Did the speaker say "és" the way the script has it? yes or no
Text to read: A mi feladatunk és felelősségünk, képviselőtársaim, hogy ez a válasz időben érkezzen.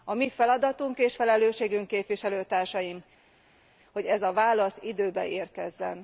yes